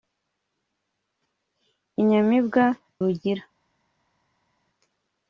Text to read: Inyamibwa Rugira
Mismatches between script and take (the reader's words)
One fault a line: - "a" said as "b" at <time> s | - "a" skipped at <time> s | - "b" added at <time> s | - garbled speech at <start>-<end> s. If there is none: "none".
none